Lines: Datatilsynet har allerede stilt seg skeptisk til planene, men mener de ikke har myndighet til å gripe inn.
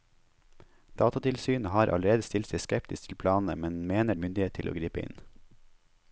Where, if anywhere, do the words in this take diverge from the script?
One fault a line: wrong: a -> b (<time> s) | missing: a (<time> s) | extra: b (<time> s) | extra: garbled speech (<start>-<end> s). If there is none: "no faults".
missing: de ikke (4.2 s)